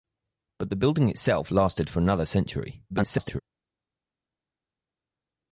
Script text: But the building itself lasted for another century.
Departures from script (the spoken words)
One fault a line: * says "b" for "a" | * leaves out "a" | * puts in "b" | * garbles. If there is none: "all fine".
* garbles